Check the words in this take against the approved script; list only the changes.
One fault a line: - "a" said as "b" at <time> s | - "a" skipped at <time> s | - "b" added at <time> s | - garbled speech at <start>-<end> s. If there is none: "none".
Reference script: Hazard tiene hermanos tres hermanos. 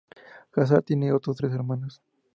- "hermanos" said as "otros" at 1.1 s